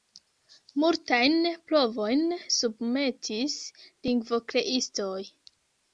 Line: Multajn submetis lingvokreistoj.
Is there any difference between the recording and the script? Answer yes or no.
yes